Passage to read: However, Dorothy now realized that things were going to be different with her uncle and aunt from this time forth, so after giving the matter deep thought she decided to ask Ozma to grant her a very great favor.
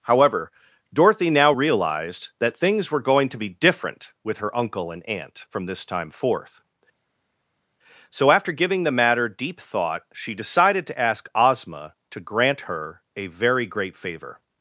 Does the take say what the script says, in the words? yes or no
yes